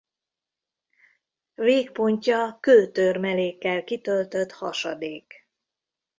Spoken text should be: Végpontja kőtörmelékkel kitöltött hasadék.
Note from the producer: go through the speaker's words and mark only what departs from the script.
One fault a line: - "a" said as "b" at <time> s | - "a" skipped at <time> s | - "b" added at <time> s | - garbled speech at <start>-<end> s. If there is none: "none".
none